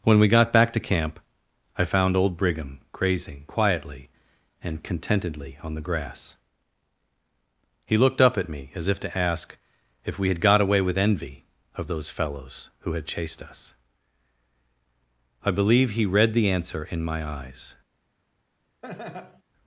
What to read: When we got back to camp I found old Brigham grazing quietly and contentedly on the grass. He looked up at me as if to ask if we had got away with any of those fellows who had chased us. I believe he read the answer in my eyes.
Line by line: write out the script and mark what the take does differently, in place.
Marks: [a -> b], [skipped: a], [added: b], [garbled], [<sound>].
When we got back to camp I found old Brigham grazing quietly and contentedly on the grass. He looked up at me as if to ask if we had got away with [any -> envy] of those fellows who had chased us. I believe he read the answer in my eyes. [laugh]